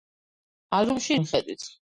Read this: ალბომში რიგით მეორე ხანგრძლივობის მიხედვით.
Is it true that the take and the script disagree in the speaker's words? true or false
true